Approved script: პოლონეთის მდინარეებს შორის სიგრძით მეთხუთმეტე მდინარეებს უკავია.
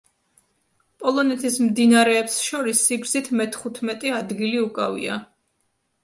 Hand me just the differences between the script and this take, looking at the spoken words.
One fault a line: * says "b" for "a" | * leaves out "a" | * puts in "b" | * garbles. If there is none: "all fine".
* says "ადგილი" for "მდინარეებს"